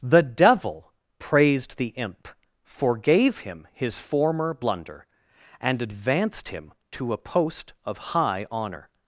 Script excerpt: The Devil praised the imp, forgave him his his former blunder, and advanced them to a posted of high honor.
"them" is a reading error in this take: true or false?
true